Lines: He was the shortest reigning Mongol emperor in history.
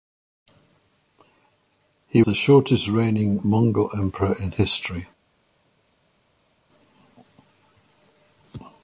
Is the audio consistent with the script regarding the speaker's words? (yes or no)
no